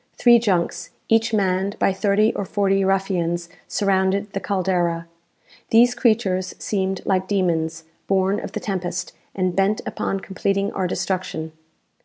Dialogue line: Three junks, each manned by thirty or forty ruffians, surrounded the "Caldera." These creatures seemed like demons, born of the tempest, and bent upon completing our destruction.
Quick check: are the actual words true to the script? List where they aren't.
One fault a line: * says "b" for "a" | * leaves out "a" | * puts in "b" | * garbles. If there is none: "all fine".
all fine